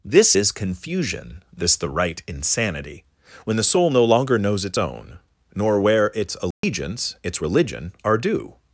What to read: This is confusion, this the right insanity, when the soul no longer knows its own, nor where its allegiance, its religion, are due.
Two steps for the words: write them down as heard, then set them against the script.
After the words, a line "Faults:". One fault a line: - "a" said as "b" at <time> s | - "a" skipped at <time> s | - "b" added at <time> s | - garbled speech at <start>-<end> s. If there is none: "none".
This is confusion, this the right insanity, when the soul no longer knows its own, nor where its allegiance, its religion, are due.
Faults:
none